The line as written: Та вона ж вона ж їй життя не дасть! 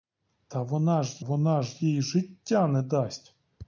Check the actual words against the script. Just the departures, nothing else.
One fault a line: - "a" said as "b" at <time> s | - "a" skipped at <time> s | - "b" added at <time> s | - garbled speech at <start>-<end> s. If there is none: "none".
none